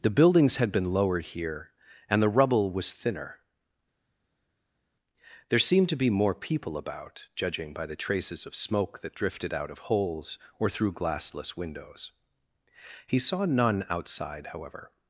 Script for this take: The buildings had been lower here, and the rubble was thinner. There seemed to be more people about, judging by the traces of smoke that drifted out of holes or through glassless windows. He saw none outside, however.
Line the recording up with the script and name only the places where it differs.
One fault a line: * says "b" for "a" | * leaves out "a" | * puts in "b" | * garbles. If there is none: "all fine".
* says "lowered" for "lower"